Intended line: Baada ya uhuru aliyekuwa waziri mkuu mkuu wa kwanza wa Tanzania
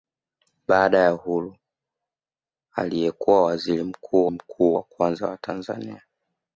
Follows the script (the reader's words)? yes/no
yes